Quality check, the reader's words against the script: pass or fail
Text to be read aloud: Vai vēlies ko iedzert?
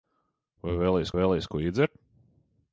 fail